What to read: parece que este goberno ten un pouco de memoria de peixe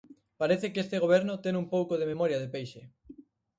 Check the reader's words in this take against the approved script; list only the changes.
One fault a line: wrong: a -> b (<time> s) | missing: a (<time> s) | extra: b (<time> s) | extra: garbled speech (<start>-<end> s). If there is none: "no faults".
no faults